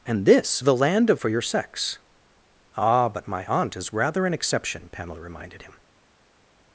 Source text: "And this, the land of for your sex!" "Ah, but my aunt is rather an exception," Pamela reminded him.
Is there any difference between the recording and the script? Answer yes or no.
no